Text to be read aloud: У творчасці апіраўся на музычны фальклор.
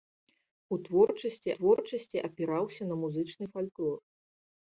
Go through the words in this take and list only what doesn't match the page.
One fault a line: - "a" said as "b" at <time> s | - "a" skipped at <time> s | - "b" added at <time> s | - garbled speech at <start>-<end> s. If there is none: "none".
- "творчасці" added at 1.5 s